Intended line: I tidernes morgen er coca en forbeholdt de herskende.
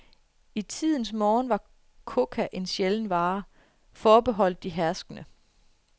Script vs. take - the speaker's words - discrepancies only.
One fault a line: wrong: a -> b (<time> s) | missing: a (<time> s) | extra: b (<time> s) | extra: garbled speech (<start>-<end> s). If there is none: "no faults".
wrong: er -> var (1.5 s)
extra: sjælden vare (2.6 s)